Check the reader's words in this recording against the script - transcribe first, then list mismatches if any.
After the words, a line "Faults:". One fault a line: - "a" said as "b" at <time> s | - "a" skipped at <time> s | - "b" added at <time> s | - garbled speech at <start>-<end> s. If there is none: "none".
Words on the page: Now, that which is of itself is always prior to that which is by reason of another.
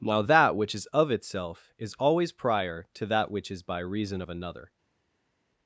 Now, that which is of itself is always prior to that which is by reason of another.
Faults:
none